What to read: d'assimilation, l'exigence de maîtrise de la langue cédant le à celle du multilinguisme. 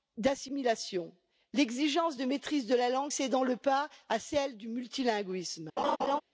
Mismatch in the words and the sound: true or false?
true